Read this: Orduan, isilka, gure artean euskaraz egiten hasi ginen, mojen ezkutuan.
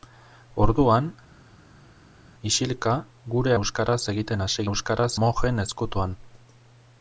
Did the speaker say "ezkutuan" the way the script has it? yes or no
yes